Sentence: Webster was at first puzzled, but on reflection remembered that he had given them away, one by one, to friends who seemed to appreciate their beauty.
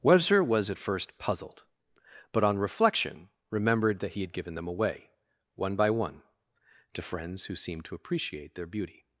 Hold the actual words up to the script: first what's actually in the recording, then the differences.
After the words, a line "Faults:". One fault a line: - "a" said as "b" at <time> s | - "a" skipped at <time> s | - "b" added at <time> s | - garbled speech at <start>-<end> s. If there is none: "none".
Webster was at first puzzled, but on reflection remembered that he had given them away, one by one, to friends who seemed to appreciate their beauty.
Faults:
none